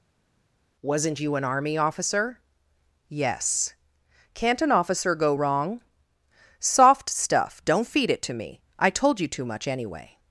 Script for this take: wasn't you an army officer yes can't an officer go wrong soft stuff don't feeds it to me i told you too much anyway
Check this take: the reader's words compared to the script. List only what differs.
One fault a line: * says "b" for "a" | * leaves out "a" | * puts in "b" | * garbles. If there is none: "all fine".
* says "feed" for "feeds"